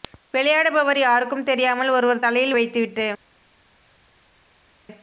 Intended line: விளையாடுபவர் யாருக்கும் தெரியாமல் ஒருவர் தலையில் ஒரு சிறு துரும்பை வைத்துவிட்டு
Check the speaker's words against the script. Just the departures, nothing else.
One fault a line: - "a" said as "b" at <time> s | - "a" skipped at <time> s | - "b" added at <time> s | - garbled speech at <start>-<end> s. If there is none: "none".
- "ஒரு சிறு துரும்பை" skipped at 2.5 s